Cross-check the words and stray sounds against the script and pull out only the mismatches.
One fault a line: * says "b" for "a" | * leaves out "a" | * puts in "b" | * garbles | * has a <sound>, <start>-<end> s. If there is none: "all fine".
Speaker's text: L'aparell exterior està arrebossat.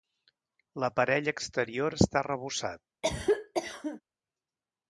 * has a cough, 3.0-4.0 s